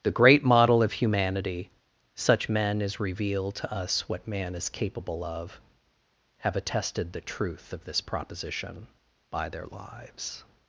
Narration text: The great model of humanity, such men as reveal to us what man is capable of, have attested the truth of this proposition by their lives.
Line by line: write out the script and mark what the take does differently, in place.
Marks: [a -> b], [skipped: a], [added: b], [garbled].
The great model of humanity, such men as reveal to us what man is capable of, have attested the truth of this proposition by their lives.